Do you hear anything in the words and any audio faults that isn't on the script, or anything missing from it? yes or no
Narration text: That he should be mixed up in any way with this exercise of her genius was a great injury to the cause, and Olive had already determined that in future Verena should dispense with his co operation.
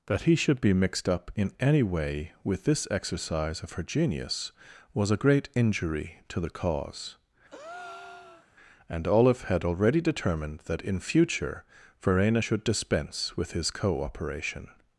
yes